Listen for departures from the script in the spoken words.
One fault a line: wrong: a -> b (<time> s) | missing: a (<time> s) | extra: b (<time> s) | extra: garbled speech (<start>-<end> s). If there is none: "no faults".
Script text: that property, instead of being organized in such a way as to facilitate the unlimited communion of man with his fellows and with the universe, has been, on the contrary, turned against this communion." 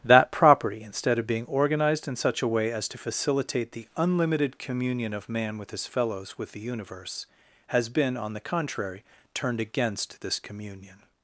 missing: and (6.4 s)